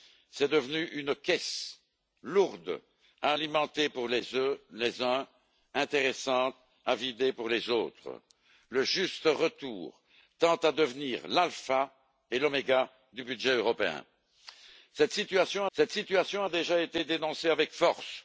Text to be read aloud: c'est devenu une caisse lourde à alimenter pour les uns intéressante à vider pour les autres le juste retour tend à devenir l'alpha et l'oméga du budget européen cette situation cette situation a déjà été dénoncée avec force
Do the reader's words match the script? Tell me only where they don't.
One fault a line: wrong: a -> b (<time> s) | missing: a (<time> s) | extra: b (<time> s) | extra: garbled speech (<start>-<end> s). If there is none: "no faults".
no faults